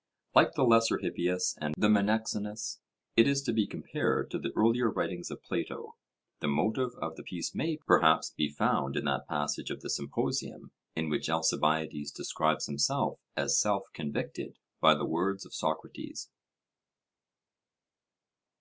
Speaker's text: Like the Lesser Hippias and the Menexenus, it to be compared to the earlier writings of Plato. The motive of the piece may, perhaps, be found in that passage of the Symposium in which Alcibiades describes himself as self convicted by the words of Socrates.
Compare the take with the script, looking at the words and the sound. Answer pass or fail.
fail